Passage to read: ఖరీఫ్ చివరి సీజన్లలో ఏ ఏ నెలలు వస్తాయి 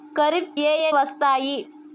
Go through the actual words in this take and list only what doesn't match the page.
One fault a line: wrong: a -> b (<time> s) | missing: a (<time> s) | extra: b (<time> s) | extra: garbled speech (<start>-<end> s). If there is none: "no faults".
missing: చివరి సీజన్లలో (0.5 s)
missing: నెలలు (0.9 s)